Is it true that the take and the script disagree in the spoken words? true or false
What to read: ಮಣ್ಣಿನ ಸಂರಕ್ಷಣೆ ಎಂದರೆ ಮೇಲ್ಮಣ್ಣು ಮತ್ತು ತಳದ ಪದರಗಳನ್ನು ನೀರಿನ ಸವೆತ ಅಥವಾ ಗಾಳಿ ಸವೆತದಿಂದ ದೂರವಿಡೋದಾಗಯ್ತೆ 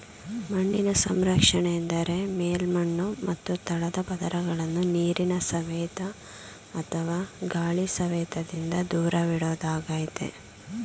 false